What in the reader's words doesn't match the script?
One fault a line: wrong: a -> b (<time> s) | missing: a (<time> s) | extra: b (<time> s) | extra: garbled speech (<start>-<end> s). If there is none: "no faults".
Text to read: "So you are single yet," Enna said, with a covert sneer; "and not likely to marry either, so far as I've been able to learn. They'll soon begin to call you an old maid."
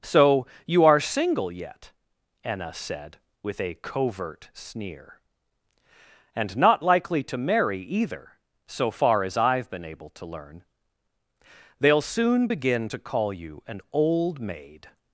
no faults